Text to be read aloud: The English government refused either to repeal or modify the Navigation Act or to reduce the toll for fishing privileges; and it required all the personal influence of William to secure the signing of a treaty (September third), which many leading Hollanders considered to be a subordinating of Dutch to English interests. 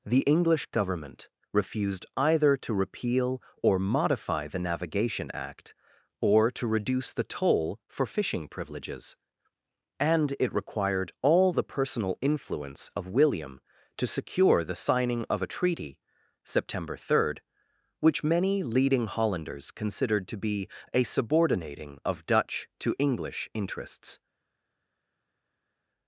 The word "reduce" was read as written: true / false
true